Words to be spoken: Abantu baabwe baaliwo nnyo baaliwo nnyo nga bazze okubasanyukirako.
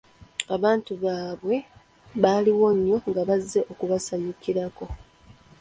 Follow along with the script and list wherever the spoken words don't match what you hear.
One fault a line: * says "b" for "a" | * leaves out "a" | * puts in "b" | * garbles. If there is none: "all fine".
* leaves out "baaliwo nnyo"